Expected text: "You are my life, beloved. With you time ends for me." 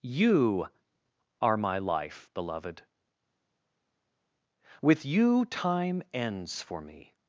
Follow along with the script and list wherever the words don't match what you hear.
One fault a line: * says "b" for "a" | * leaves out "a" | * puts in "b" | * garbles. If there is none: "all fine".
all fine